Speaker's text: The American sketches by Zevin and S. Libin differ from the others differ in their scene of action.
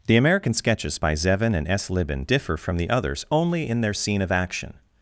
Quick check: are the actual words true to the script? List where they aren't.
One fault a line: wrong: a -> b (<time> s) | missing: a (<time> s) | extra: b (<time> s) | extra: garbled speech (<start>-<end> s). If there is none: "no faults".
wrong: differ -> only (3.3 s)